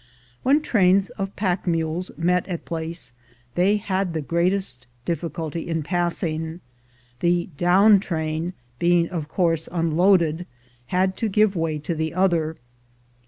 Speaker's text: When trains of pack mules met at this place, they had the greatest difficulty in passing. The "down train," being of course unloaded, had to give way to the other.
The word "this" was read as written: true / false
false